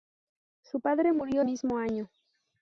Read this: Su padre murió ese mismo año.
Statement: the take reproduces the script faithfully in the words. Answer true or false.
false